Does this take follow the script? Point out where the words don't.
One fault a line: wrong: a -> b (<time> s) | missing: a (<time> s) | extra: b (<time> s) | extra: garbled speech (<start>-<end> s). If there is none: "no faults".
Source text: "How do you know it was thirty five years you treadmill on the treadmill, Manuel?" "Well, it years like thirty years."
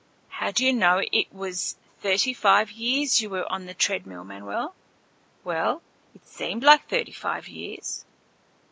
wrong: treadmill -> were (3.3 s)
wrong: years -> seemed (6.2 s)
extra: five (7.1 s)